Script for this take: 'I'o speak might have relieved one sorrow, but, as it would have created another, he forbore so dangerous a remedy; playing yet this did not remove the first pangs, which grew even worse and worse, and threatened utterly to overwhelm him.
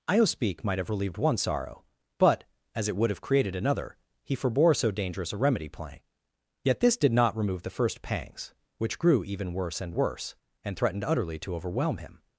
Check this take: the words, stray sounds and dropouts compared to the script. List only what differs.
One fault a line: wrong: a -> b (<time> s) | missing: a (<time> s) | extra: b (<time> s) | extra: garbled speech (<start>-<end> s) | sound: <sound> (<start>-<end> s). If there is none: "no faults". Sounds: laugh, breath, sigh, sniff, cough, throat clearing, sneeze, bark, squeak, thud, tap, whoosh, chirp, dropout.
no faults